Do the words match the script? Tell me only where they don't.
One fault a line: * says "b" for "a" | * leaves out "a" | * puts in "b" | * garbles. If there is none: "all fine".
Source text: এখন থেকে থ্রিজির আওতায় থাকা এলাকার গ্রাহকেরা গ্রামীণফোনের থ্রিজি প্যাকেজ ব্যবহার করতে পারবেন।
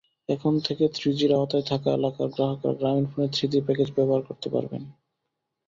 all fine